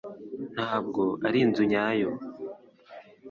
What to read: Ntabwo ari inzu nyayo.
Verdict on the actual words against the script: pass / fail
pass